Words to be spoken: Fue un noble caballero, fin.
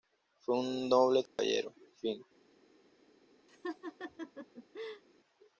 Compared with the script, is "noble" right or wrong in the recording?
right